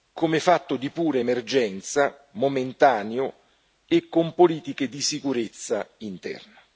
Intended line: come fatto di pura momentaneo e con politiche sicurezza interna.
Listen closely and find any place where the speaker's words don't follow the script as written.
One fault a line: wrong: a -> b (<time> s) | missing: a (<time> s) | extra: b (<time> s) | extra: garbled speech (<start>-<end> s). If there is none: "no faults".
extra: emergenza (1.2 s)
extra: di (4.9 s)